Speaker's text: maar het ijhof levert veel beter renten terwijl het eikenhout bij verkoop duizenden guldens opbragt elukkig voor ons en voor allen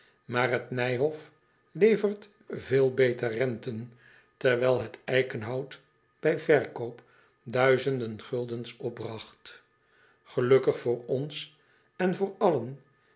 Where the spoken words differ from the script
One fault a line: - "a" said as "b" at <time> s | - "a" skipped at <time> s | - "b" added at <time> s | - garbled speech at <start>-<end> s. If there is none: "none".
none